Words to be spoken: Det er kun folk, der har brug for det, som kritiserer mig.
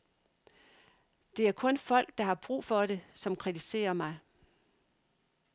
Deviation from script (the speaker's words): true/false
false